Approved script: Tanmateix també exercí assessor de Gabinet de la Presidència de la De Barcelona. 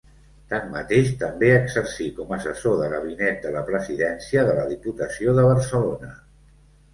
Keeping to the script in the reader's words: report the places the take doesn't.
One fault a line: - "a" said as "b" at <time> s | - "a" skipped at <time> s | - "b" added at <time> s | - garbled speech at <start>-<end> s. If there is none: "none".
- "com" added at 2.2 s
- "Diputació" added at 4.7 s